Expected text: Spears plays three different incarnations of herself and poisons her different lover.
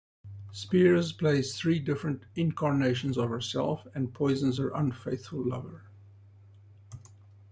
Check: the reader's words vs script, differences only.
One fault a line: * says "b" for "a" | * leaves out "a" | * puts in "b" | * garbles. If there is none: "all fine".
* says "unfaithful" for "different"